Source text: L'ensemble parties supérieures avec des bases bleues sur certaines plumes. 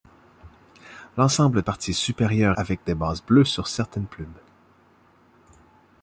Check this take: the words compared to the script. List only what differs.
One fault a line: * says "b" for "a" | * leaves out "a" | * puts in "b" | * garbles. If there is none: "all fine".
all fine